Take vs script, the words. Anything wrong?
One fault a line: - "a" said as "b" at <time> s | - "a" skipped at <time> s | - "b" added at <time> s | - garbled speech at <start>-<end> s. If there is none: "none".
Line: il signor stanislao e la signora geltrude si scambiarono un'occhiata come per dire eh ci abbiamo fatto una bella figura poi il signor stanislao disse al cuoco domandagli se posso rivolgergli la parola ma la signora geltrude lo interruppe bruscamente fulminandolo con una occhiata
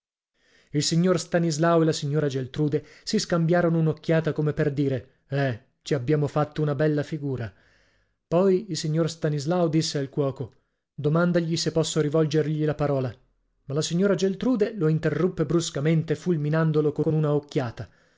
- "con" added at 17.0 s